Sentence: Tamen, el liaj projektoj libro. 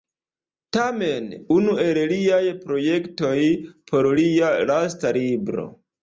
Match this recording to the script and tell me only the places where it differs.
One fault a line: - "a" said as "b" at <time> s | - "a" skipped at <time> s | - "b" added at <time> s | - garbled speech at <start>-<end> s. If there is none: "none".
- "unu" added at 1.6 s
- "por lia lasta" added at 3.9 s